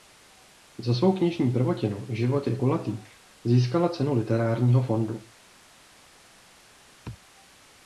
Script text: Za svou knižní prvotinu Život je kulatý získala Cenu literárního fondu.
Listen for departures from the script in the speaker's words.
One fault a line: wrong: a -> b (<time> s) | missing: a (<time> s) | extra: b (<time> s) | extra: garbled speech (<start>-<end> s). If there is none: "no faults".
no faults